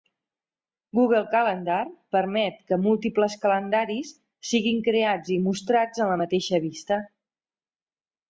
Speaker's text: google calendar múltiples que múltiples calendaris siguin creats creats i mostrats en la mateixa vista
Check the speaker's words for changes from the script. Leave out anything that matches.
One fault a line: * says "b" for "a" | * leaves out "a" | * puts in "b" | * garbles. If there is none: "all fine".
* says "permet" for "múltiples"
* leaves out "creats"